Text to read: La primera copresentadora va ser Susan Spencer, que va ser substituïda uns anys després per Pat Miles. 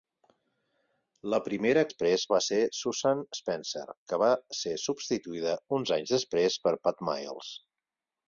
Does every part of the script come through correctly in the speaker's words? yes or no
no